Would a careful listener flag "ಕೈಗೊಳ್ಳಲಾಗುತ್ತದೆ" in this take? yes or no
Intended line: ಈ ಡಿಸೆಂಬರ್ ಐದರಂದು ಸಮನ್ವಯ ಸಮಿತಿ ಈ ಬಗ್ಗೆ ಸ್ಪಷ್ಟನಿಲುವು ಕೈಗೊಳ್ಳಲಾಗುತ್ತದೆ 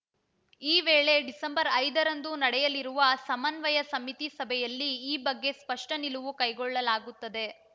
no